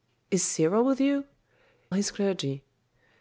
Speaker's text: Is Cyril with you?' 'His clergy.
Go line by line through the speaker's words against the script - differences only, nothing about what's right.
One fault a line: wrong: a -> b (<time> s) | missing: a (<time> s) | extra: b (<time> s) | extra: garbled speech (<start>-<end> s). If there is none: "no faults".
no faults